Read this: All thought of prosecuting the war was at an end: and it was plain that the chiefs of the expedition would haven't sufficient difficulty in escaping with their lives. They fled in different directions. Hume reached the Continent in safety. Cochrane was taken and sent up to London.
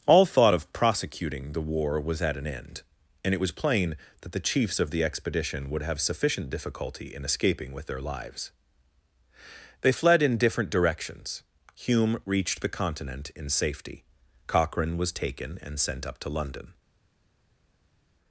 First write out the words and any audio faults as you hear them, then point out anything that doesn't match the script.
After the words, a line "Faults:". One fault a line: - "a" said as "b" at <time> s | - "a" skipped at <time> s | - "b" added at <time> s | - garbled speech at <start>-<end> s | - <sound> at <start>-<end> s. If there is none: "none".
All thought of prosecuting the war was at an end: and it was plain that the chiefs of the expedition would have sufficient difficulty in escaping with their lives. They fled in different directions. Hume reached the Continent in safety. Cochrane was taken and sent up to London.
Faults:
- "haven't" said as "have" at 5.8 s